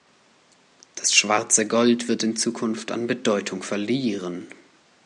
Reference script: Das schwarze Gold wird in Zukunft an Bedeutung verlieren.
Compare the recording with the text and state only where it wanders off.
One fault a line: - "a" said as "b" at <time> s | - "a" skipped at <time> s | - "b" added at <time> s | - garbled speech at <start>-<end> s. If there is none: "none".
none